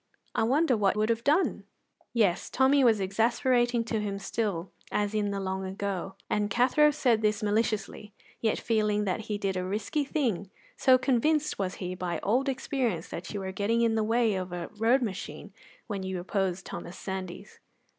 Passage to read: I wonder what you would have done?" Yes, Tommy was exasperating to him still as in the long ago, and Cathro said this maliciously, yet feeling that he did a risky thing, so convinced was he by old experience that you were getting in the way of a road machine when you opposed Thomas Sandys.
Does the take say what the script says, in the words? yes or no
no